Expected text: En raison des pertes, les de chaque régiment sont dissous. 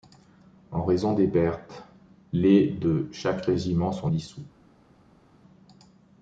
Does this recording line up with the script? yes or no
yes